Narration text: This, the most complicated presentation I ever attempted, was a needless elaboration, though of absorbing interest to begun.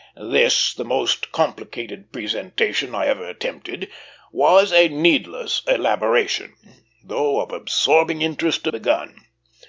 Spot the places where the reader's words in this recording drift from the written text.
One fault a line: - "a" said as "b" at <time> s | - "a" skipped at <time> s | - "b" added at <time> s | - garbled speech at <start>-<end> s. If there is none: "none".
none